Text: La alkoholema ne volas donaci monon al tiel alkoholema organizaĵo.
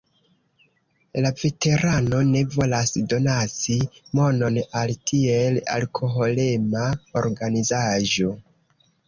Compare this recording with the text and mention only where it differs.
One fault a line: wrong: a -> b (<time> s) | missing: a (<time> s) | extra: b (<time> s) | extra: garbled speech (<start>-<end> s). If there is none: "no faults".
wrong: alkoholema -> veterano (1.4 s)